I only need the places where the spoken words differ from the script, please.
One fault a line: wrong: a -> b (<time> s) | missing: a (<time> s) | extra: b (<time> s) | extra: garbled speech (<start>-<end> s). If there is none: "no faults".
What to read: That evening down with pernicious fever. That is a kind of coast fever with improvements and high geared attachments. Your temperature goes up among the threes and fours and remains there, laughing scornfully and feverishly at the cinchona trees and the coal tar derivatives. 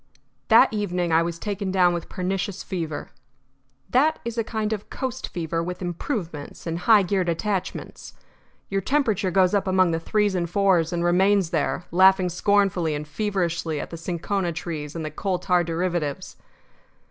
extra: I was taken (1.1 s)